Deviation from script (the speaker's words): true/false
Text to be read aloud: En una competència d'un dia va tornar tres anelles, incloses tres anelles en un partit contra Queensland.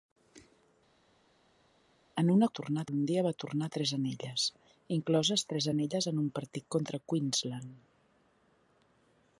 true